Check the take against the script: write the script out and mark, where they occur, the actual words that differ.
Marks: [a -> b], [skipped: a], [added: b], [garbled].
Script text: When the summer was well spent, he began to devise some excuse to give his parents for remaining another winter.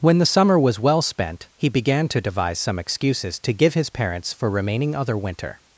When the summer was well spent, he began to devise some [excuse -> excuses] to give his parents for remaining [another -> other] winter.